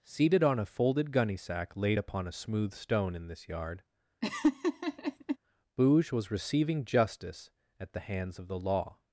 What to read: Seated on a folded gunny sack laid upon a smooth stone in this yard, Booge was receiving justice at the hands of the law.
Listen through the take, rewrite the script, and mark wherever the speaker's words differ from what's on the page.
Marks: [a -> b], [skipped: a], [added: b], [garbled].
Seated on a folded gunny sack laid upon a smooth stone in this yard, Booge was receiving justice at the hands of the law.